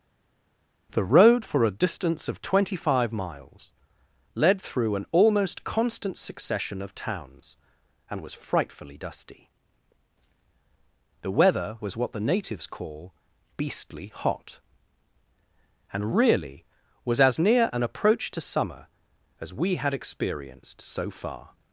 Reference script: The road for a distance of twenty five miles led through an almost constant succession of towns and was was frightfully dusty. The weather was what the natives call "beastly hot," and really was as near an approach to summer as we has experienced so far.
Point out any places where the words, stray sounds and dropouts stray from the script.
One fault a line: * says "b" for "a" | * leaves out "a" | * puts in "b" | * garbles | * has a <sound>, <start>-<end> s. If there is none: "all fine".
* leaves out "was"
* says "had" for "has"